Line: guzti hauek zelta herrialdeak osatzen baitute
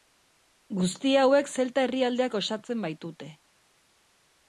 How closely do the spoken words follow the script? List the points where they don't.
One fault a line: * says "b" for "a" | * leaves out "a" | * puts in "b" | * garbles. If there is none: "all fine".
all fine